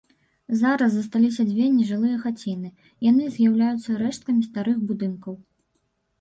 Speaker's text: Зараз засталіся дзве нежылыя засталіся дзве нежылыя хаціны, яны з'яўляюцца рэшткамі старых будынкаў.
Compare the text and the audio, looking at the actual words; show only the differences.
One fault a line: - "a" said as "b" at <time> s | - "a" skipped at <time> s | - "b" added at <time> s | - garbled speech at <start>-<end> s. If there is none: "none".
- "засталіся дзве нежылыя" skipped at 2.2 s